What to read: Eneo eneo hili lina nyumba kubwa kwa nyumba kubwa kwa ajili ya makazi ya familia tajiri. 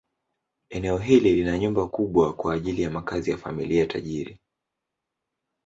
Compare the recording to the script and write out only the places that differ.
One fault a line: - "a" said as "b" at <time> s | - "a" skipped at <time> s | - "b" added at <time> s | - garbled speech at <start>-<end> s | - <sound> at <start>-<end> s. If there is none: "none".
- "eneo" skipped at 1.0 s
- "nyumba kubwa kwa" skipped at 2.5 s